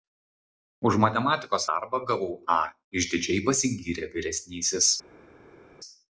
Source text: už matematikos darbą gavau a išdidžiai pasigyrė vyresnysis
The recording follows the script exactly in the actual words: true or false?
true